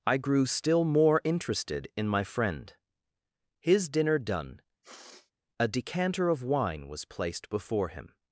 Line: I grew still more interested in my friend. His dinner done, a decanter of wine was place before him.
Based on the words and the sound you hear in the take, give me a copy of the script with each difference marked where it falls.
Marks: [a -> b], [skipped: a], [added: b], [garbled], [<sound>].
I grew still more interested in my friend. His dinner done, [sniff] a decanter of wine was [place -> placed] before him.